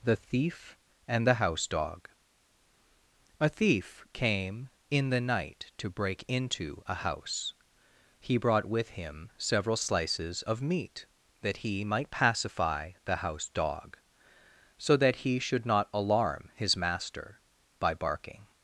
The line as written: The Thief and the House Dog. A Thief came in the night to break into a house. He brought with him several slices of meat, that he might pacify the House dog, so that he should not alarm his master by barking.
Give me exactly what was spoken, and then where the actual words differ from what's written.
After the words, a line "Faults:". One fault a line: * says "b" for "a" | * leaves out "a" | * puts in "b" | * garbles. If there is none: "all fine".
The Thief and the House Dog. A Thief came in the night to break into a house. He brought with him several slices of meat, that he might pacify the House dog, so that he should not alarm his master by barking.
Faults:
all fine